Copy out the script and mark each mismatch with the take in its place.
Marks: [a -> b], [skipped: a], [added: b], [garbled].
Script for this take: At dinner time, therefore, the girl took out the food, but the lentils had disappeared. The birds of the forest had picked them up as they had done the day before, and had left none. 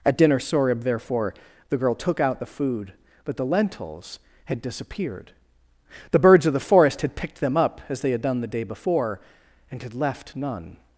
At dinner [time, -> sorib] therefore, the girl took out the food, but the lentils had disappeared. The birds of the forest had picked them up as they had done the day before, and had left none.